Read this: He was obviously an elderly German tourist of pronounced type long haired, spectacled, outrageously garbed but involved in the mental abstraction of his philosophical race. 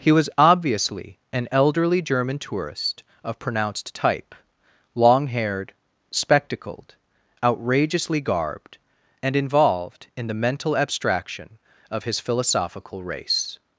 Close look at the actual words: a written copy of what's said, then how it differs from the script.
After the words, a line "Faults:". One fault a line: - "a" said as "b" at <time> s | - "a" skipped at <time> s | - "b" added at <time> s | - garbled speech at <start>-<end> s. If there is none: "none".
He was obviously an elderly German tourist of pronounced type long haired, spectacled, outrageously garbed and involved in the mental abstraction of his philosophical race.
Faults:
- "but" said as "and" at 9.2 s